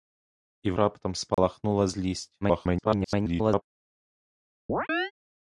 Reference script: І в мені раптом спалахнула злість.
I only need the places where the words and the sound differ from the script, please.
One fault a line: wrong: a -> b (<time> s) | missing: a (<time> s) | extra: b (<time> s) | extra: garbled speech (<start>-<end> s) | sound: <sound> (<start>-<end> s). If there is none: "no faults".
missing: мені (0.8 s)
sound: dropout (1.3-1.4 s)
extra: garbled speech (2.4-3.6 s)
sound: chirp (4.7-5.1 s)